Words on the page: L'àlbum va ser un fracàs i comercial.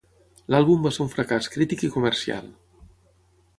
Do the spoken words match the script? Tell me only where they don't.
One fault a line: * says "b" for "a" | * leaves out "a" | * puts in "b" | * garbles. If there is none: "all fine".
* puts in "crític"